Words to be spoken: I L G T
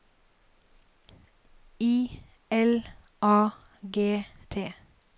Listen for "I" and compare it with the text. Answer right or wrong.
right